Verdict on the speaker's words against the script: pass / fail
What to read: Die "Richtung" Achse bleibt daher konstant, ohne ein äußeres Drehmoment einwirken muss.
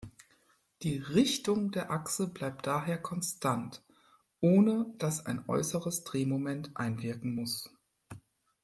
fail